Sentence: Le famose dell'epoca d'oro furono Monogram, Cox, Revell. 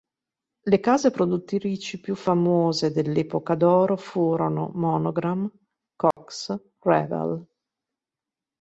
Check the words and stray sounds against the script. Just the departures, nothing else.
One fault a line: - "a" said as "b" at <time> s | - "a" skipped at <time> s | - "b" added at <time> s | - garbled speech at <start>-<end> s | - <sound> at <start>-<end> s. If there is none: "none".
- "case produttrici più" added at 0.8 s
- dropout at 6.1-6.2 s